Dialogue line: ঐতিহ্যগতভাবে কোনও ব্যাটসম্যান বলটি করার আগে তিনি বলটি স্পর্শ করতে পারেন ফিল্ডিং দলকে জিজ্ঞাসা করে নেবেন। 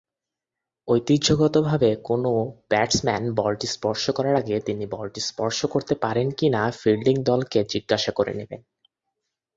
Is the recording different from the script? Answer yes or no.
yes